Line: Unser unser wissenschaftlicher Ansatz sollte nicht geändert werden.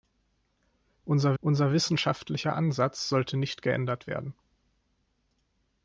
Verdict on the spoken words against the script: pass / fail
pass